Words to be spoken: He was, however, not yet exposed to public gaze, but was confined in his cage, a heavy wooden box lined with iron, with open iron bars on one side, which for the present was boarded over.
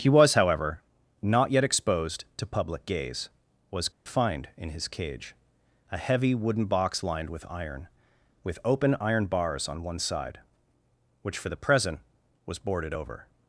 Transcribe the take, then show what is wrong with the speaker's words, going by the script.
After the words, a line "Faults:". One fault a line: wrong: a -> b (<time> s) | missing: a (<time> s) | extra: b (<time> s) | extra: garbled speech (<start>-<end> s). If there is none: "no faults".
He was, however, not yet exposed to public gaze, was confined in his cage, a heavy wooden box lined with iron, with open iron bars on one side, which for the present was boarded over.
Faults:
missing: but (3.3 s)